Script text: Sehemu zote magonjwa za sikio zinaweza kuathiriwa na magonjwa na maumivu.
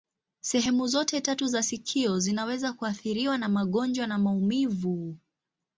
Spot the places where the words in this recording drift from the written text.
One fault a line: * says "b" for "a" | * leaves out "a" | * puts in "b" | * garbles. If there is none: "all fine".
* says "tatu" for "magonjwa"